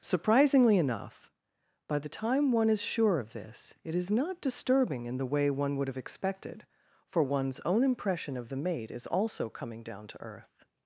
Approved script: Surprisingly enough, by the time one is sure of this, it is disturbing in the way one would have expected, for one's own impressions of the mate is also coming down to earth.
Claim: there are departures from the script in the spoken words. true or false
true